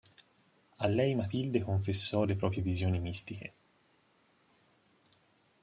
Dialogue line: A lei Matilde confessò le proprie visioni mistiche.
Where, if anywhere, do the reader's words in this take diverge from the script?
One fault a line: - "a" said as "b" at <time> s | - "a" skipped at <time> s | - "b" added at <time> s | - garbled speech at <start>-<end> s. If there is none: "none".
none